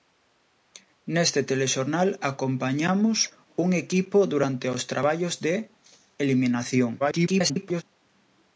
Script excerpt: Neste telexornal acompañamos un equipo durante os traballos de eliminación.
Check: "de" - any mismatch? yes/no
no